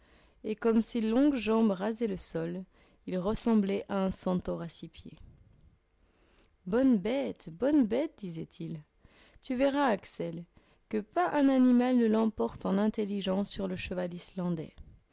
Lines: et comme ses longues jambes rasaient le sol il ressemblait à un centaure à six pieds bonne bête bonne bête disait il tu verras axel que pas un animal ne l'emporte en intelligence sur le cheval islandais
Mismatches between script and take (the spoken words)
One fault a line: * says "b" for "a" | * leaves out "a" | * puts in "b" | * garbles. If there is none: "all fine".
all fine